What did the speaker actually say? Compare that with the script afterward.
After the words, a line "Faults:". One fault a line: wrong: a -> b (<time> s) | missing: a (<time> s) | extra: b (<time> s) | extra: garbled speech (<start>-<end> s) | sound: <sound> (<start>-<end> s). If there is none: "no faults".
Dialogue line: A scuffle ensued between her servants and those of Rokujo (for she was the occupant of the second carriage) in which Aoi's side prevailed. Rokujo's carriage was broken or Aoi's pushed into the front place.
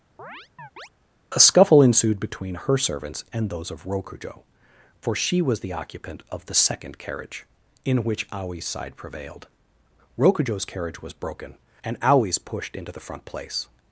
A scuffle ensued between her servants and those of Rokujo (for she was the occupant of the second carriage) in which Aoi's side prevailed. Rokujo's carriage was broken and Aoi's pushed into the front place.
Faults:
sound: chirp (0.2-0.9 s)
wrong: or -> and (11.8 s)